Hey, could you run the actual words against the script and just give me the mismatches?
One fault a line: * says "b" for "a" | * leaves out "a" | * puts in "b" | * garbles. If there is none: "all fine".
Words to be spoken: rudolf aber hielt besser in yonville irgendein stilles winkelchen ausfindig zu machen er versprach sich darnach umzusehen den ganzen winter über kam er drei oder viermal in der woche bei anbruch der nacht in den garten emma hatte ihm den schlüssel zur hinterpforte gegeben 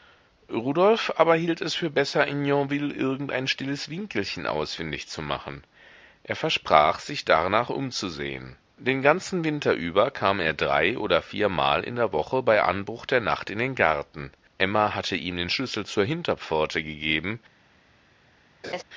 * puts in "es für"